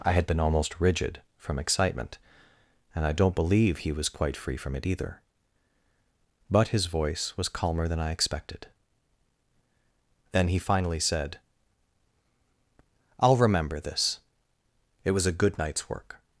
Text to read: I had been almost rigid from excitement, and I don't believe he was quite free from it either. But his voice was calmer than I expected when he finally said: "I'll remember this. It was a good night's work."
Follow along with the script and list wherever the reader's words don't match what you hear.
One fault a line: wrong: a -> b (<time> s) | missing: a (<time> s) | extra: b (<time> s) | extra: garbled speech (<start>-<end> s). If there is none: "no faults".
wrong: when -> then (10.3 s)